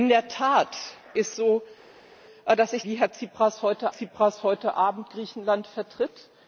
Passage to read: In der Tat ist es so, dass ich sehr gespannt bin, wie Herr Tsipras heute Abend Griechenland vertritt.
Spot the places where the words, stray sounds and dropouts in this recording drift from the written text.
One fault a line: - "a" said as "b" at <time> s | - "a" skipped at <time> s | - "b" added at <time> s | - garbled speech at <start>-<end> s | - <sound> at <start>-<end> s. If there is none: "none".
- "es" skipped at 1.4 s
- "sehr gespannt bin wie Herr" said as "wie Herr Tsipras heute" at 2.8 s